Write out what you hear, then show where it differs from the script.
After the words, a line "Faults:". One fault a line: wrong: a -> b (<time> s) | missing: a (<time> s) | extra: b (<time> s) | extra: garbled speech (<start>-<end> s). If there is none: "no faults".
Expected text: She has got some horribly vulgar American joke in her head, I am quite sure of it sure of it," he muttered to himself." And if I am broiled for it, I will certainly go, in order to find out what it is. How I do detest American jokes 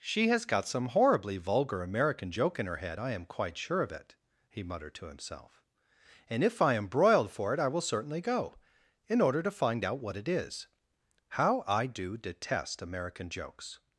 She has got some horribly vulgar American joke in her head, I am quite sure of it," he muttered to himself." And if I am broiled for it, I will certainly go, in order to find out what it is. How I do detest American jokes
Faults:
missing: sure of it (4.2 s)